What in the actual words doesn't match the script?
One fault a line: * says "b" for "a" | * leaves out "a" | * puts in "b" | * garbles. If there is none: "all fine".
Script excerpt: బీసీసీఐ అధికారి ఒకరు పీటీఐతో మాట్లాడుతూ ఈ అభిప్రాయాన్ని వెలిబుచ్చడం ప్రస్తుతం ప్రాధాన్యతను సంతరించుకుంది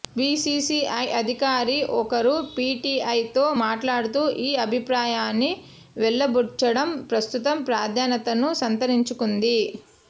all fine